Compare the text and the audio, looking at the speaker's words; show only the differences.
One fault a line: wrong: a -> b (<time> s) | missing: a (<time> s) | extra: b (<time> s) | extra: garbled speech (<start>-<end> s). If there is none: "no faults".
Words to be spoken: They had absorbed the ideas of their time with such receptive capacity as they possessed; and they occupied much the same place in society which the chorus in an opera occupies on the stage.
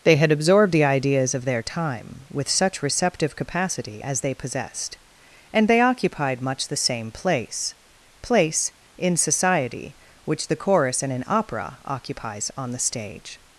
extra: place (8.2 s)